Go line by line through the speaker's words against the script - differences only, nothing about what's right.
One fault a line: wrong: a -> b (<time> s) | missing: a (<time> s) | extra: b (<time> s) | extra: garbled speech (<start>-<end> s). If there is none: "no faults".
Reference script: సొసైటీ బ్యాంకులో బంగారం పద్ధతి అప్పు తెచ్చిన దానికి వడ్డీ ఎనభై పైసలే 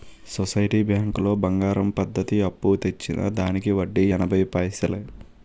no faults